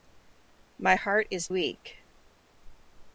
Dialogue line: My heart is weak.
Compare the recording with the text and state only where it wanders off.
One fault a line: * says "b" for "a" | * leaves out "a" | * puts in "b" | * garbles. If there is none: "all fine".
all fine